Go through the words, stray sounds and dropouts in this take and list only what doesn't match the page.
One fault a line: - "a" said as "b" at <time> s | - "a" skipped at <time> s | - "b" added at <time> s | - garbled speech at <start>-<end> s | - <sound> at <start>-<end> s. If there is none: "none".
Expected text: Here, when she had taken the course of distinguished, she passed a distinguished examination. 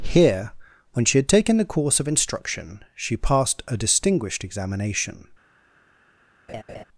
- "distinguished" said as "instruction" at 2.1 s
- laugh at 6.5-6.8 s